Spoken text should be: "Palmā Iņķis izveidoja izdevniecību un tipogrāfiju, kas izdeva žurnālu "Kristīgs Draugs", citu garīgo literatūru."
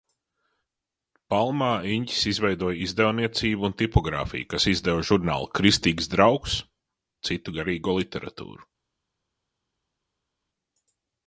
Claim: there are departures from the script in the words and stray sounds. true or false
false